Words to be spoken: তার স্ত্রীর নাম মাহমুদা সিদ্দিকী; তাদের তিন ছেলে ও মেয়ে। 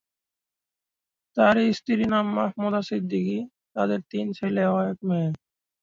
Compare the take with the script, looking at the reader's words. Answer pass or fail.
fail